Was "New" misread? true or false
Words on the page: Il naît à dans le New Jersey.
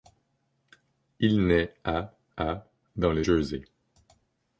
true